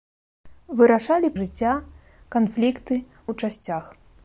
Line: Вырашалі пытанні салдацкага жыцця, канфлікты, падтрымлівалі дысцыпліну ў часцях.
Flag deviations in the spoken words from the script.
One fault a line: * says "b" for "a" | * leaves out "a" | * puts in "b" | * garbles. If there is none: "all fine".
* leaves out "пытанні салдацкага"
* leaves out "падтрымлівалі дысцыпліну"